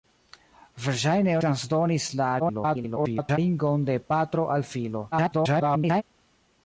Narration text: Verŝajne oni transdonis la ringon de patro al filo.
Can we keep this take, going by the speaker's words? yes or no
no